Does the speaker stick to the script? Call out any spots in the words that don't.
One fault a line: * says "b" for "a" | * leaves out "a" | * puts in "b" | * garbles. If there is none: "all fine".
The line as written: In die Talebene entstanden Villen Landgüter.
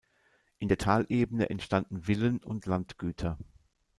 * says "der" for "die"
* puts in "und"